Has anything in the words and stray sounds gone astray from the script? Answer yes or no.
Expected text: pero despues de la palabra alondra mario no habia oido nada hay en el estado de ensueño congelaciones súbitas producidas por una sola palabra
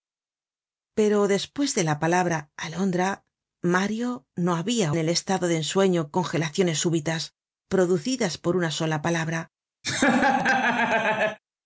yes